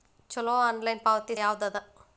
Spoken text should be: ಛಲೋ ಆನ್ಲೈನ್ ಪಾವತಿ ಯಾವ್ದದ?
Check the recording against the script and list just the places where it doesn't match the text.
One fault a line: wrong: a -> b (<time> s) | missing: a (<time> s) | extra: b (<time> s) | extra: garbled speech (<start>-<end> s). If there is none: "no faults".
no faults